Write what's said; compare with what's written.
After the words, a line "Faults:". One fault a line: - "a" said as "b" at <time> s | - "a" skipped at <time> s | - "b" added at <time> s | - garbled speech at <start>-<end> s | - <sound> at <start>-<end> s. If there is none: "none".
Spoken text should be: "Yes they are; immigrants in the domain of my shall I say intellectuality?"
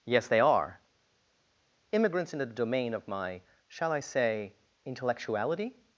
"Yes they are; immigrants in the domain of my shall I say intellectuality?"
Faults:
none